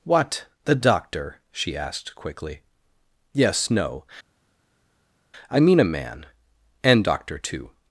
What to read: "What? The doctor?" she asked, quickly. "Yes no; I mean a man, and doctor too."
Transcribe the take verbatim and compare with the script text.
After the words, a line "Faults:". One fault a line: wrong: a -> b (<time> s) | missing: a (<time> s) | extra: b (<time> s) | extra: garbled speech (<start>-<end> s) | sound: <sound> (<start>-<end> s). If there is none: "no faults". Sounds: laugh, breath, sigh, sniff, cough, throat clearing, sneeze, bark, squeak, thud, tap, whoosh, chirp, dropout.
"What? The doctor?" she asked, quickly. "Yes no; I mean a man, and doctor too."
Faults:
no faults